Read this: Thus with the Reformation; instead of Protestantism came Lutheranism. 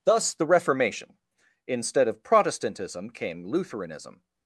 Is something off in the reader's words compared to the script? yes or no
yes